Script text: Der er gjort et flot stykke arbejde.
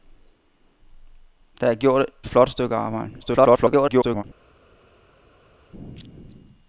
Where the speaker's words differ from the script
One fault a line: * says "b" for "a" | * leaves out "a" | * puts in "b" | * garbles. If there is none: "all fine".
* leaves out "et"
* garbles